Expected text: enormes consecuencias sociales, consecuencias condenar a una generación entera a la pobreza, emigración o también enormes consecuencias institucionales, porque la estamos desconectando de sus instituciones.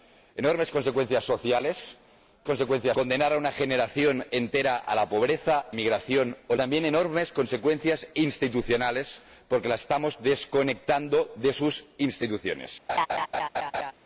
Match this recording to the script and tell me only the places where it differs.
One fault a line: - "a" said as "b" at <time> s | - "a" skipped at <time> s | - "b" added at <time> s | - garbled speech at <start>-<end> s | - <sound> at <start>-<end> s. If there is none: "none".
- laugh at 12.9-13.9 s